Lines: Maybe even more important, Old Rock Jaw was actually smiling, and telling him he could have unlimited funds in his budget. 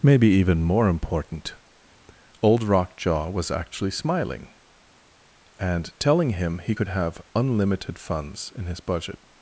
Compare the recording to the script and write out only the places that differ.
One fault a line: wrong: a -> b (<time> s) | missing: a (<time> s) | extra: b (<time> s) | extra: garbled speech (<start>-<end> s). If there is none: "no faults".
no faults